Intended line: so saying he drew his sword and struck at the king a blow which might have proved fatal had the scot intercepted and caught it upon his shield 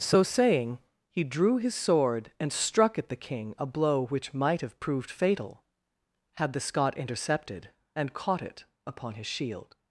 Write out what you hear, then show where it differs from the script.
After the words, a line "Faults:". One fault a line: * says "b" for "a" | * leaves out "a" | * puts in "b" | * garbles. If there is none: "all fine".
so saying he drew his sword and struck at the king a blow which might have proved fatal had the scot intercepted and caught it upon his shield
Faults:
all fine